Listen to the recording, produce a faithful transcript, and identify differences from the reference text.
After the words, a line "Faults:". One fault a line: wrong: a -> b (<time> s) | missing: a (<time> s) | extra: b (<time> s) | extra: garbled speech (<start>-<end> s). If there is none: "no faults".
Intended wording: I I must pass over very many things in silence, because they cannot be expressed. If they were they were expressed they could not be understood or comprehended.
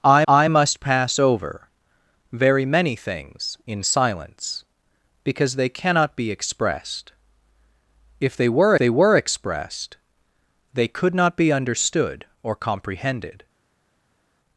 I I must pass over very many things in silence, because they cannot be expressed. If they were they were expressed they could not be understood or comprehended.
Faults:
no faults